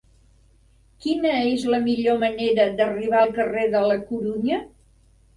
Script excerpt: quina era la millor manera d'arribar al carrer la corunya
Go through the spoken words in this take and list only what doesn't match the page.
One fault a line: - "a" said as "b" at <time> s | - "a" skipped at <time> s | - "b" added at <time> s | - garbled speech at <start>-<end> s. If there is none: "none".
- "era" said as "és" at 1.5 s
- "de" added at 3.8 s